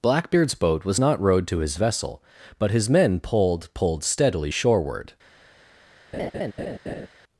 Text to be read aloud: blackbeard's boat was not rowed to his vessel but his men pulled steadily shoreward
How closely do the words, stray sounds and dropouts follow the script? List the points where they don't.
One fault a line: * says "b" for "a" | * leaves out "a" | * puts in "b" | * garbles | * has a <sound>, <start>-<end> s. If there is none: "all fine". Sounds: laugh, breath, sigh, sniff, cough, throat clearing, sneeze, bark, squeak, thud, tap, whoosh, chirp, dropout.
* puts in "pulled"
* has a laugh, 6.1-7.1 s